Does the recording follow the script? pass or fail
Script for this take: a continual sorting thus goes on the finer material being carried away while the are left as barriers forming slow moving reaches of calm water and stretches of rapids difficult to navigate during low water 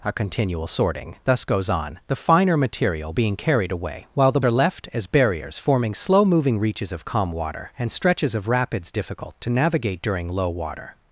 pass